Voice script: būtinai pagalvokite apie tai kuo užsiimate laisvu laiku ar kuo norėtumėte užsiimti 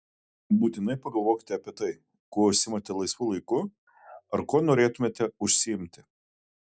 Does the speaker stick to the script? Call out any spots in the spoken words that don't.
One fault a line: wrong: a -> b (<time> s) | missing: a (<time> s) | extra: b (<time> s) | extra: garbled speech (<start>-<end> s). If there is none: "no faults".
no faults